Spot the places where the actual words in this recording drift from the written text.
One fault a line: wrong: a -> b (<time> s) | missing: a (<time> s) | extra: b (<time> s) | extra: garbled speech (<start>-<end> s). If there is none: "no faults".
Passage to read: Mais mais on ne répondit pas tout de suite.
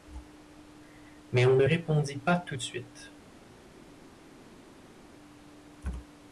missing: mais (1.4 s)